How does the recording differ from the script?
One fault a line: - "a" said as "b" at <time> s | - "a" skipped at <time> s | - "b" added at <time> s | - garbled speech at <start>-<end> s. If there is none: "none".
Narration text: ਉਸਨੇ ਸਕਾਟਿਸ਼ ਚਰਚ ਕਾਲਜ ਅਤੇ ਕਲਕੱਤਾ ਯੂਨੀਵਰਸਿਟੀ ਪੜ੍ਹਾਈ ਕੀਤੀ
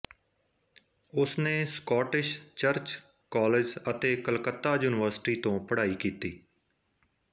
- "ਤੋਂ" added at 5.4 s